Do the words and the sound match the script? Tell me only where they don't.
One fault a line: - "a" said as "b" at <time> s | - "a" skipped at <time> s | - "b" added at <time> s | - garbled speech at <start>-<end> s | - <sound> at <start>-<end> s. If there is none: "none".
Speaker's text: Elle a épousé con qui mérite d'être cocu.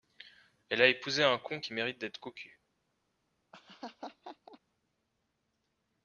- "un" added at 1.2 s
- laugh at 3.5-4.6 s